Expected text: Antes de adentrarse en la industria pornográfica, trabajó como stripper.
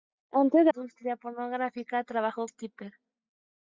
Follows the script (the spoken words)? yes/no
no